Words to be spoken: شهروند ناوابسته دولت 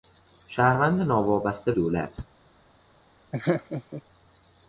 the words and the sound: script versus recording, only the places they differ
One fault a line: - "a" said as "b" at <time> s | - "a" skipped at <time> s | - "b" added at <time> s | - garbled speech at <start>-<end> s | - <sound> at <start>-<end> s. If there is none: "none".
- laugh at 3.3-4.0 s